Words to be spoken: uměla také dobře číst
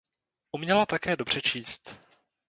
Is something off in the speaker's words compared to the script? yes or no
no